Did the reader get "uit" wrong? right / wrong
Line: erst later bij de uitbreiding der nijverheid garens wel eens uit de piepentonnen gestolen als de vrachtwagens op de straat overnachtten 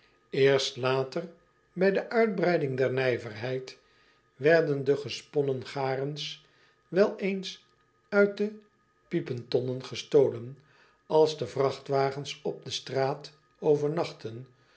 right